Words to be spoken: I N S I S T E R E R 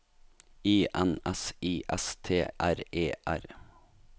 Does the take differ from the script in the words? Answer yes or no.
yes